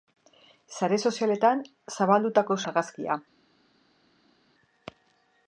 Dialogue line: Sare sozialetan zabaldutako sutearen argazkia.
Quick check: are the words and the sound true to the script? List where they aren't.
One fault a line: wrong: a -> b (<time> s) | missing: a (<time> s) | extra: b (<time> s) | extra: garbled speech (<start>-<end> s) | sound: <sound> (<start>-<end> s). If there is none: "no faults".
missing: sutearen (2.6 s)